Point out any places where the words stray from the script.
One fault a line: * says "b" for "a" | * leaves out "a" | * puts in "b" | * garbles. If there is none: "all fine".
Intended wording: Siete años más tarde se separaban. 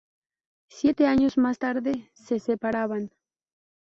all fine